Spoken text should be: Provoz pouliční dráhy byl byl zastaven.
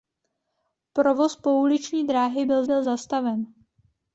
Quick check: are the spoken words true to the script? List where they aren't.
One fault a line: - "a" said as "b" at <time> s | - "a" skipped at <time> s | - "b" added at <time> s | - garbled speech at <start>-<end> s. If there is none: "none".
none